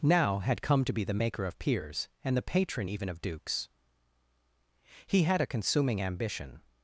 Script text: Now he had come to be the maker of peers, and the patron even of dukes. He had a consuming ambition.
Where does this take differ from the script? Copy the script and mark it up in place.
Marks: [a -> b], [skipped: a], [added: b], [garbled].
Now [skipped: he] had come to be the maker of peers, and the patron even of dukes. He had a consuming ambition.